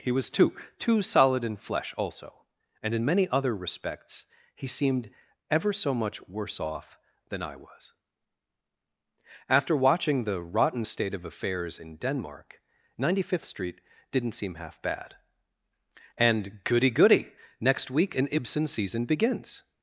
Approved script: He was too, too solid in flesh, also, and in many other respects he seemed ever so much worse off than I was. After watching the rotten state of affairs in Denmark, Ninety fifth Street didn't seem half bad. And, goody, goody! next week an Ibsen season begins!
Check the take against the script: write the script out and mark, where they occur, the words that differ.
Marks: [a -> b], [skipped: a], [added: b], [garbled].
He was too, too solid in flesh, also, and in many other respects he seemed ever so much worse off than I was. After watching the rotten state of affairs in Denmark, Ninety fifth Street didn't seem half bad. And, goody, goody! next week an Ibsen season begins!